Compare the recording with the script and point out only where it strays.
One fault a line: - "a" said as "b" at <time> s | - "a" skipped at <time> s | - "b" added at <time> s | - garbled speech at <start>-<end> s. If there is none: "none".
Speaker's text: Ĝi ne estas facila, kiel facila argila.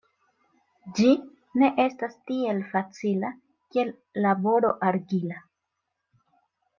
- "tiel" added at 2.3 s
- "facila" said as "laboro" at 4.3 s